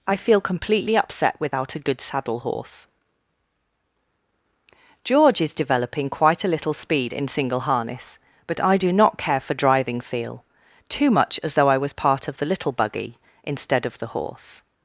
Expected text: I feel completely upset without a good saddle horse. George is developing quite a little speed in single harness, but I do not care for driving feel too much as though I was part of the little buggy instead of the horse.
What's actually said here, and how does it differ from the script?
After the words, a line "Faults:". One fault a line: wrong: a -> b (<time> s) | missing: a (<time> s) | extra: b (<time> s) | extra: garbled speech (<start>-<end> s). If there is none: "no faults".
I feel completely upset without a good saddle horse. George is developing quite a little speed in single harness, but I do not care for driving feel too much as though I was part of the little buggy instead of the horse.
Faults:
no faults